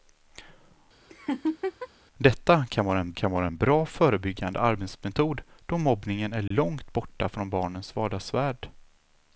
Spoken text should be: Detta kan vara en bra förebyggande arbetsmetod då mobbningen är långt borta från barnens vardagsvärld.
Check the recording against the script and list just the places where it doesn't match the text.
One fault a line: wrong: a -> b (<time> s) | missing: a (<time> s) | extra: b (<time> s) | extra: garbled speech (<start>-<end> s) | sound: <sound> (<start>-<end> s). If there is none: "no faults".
sound: laugh (1.1-1.9 s)
extra: kan vara en (3.1 s)
sound: dropout (6.5-6.5 s)